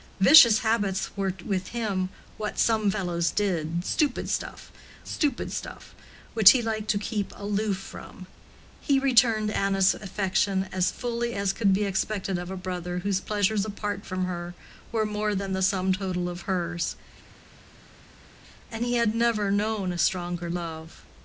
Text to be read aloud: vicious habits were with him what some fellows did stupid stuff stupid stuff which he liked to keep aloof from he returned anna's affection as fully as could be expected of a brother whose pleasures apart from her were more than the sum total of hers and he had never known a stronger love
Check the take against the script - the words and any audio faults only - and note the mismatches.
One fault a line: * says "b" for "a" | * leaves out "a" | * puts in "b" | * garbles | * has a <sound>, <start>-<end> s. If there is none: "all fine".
all fine